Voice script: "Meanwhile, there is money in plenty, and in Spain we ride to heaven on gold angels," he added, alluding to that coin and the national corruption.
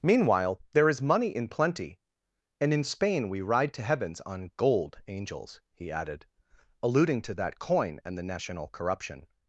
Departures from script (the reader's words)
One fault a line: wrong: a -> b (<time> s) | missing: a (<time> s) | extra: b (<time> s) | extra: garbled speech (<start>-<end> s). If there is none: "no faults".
wrong: heaven -> heavens (3.8 s)